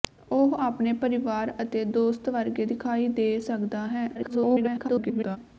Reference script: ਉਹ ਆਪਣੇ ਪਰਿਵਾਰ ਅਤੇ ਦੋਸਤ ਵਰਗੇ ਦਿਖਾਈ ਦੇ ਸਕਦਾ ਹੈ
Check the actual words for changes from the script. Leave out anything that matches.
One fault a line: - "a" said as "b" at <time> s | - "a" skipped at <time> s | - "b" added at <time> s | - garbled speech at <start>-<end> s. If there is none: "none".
- garbled speech at 4.1-5.4 s